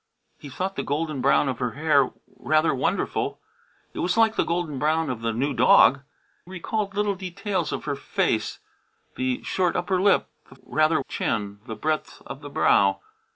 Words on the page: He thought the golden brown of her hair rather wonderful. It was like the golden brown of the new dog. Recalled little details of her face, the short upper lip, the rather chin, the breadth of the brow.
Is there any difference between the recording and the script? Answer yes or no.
no